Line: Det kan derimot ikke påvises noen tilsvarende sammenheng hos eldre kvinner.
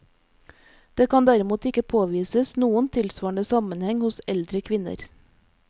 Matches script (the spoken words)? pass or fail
pass